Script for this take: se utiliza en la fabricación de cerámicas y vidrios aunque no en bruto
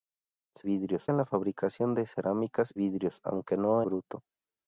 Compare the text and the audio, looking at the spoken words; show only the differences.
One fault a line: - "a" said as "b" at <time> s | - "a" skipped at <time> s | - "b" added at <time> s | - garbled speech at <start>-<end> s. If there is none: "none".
- "utiliza" said as "vidrios" at 0.6 s
- "y" skipped at 2.7 s
- "en" skipped at 3.8 s